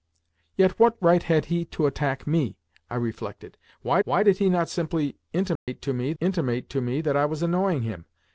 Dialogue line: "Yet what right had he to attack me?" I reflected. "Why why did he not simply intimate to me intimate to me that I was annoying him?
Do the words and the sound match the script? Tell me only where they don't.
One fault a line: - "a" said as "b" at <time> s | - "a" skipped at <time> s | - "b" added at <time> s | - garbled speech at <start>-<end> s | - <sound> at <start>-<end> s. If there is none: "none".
- dropout at 5.6-5.7 s